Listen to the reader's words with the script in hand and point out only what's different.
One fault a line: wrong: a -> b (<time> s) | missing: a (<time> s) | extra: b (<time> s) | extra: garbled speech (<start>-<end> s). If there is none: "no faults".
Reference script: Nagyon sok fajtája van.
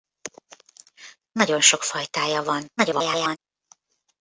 extra: garbled speech (2.8-3.4 s)